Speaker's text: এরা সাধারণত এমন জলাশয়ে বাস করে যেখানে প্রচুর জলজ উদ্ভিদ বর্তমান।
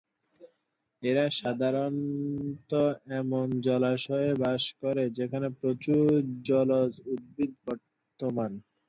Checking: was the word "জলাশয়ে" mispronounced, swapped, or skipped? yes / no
no